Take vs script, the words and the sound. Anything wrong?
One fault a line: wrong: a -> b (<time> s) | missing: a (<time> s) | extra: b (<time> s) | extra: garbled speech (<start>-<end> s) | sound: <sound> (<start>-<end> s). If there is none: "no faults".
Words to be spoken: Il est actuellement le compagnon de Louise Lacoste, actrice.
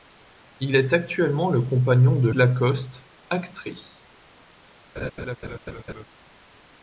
missing: Louise (2.3 s)
sound: laugh (5.0-6.1 s)